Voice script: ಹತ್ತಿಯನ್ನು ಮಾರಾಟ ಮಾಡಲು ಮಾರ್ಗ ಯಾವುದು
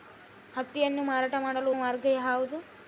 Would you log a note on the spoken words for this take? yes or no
no